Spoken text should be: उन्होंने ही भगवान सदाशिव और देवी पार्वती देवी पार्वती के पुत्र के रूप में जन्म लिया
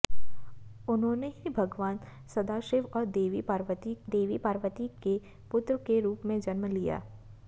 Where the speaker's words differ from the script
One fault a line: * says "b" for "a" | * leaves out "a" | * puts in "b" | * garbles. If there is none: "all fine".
all fine